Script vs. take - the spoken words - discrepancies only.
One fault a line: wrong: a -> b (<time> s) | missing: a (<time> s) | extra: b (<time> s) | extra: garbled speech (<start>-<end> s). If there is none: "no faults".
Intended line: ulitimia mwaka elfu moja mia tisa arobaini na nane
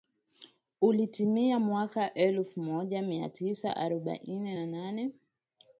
no faults